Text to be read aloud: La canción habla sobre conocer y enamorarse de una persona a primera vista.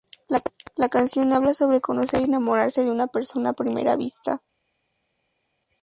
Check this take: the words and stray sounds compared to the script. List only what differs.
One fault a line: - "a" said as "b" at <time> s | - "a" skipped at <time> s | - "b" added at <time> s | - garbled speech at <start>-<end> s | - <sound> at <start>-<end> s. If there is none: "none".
none